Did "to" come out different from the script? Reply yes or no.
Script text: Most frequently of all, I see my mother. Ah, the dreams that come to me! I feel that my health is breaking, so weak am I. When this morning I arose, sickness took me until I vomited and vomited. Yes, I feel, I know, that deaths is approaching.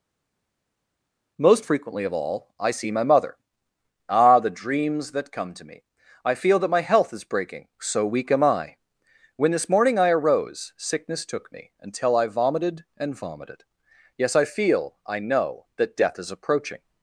no